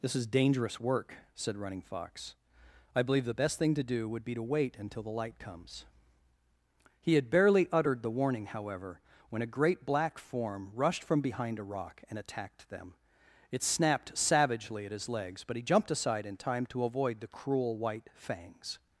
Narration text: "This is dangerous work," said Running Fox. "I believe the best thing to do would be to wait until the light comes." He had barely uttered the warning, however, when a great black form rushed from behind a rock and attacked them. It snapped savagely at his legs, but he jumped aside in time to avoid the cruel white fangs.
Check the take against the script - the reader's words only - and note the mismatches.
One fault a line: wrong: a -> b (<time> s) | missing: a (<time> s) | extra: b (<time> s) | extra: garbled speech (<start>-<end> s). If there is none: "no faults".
no faults